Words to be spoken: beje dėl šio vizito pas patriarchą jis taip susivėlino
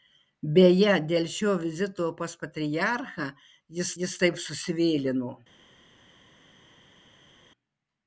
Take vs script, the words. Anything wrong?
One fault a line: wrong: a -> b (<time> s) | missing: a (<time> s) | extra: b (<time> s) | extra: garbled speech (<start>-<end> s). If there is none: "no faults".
extra: jis (4.0 s)